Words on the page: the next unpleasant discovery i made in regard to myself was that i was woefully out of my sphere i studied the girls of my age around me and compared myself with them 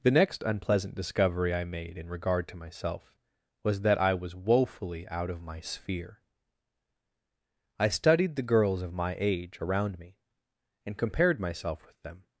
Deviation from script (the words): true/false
false